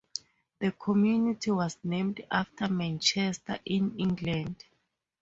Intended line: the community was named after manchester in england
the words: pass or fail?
pass